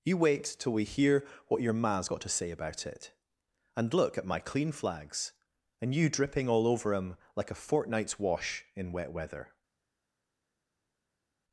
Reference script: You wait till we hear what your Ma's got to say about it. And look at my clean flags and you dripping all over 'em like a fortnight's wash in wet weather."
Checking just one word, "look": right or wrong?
right